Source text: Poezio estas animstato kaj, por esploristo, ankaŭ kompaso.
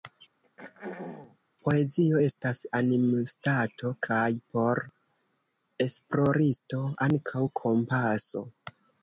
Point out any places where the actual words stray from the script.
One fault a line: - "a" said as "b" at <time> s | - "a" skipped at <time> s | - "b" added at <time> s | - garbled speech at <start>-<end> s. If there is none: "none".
none